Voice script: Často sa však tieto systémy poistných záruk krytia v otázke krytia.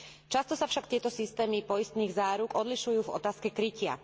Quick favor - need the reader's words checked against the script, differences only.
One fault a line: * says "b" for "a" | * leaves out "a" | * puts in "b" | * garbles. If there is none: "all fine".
* says "odlišujú" for "krytia"